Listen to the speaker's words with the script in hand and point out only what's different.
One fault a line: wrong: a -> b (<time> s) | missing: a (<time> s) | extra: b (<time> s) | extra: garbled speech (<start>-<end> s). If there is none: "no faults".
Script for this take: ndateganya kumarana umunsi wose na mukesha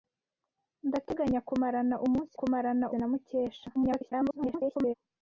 wrong: wose -> kumarana (2.4 s)
extra: garbled speech (3.7-4.9 s)